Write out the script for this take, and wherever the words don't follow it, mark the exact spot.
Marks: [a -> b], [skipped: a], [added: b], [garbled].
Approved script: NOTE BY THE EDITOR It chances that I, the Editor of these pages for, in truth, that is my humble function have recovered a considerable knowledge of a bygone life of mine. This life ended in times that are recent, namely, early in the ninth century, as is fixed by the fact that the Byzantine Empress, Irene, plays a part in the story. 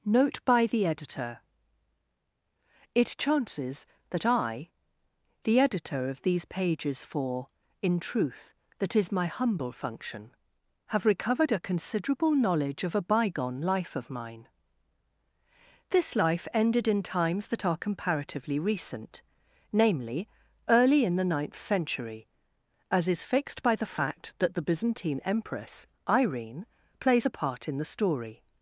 NOTE BY THE EDITOR It chances that I, the Editor of these pages for, in truth, that is my humble function have recovered a considerable knowledge of a bygone life of mine. This life ended in times that are [added: comparatively] recent, namely, early in the ninth century, as is fixed by the fact that the Byzantine Empress, Irene, plays a part in the story.